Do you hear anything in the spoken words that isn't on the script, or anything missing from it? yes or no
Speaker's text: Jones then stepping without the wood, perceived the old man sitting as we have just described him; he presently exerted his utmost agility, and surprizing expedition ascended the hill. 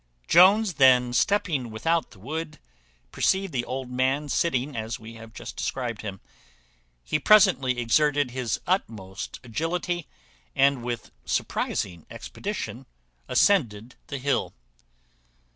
yes